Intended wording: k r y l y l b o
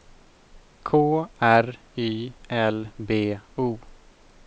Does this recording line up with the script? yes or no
no